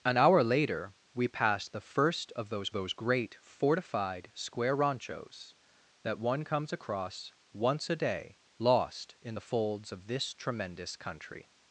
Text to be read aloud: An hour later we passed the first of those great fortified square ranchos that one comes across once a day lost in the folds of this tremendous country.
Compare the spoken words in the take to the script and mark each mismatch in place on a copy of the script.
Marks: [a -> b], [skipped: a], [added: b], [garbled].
An hour later we passed the first of those [added: those] great fortified square ranchos that one comes across once a day lost in the folds of this tremendous country.